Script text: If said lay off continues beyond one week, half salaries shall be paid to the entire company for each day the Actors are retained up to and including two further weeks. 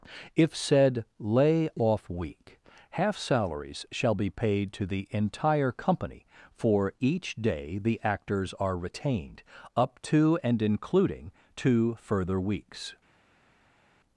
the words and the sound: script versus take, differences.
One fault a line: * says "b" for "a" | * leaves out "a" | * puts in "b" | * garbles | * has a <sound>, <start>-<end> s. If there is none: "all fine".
* leaves out "continues beyond one"